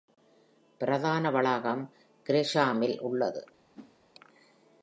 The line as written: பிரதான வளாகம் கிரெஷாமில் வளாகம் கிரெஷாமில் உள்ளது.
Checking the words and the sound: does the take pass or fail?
fail